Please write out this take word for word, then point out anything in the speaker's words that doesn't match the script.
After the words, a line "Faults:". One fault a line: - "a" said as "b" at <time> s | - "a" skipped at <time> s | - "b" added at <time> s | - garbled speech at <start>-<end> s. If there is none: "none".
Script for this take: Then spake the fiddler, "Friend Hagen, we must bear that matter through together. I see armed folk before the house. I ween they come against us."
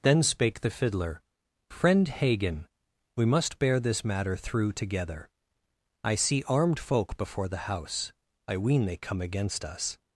Then spake the fiddler, "Friend Hagen, we must bear this matter through together. I see armed folk before the house. I ween they come against us."
Faults:
- "that" said as "this" at 3.8 s